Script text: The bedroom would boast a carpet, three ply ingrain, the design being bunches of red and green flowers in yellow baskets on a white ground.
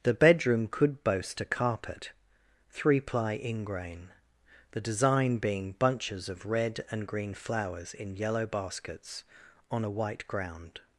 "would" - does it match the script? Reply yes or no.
no